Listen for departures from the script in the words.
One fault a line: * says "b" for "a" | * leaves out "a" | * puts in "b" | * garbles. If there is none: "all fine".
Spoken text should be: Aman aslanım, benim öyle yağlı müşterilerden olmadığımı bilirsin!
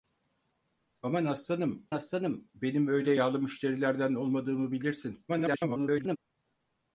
* puts in "aslanım"
* garbles